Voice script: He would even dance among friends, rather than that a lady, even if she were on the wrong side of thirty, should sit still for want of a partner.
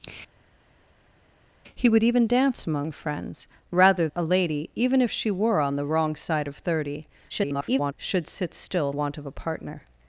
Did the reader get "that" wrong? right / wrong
wrong